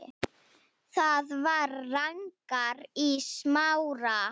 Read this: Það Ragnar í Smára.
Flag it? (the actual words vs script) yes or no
yes